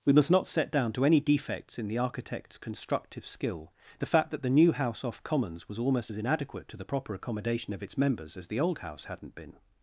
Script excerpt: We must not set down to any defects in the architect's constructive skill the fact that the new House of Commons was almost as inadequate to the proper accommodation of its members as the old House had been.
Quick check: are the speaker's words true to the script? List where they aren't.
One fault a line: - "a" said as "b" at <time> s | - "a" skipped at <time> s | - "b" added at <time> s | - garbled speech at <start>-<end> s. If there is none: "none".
- "of" said as "off" at 5.0 s
- "had" said as "hadn't" at 9.0 s